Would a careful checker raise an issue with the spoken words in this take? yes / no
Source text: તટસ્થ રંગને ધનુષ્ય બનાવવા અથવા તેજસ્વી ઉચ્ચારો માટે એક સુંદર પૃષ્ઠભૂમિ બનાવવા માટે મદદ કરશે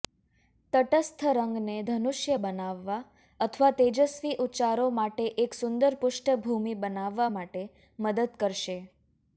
no